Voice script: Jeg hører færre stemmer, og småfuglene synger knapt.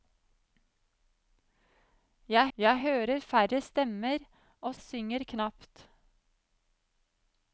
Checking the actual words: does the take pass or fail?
fail